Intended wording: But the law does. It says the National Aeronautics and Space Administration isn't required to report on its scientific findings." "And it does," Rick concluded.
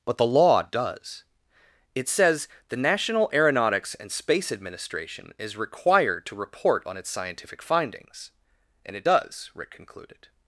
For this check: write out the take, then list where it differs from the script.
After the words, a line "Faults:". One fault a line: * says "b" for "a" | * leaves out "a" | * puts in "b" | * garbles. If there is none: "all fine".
But the law does. It says the National Aeronautics and Space Administration is required to report on its scientific findings." "And it does," Rick concluded.
Faults:
* says "is" for "isn't"